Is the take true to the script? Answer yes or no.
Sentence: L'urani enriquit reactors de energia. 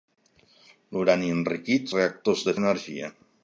yes